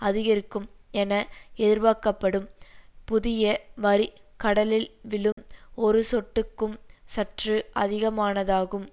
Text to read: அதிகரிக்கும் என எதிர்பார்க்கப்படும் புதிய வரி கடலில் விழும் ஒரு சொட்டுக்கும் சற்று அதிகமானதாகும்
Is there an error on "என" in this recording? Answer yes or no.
no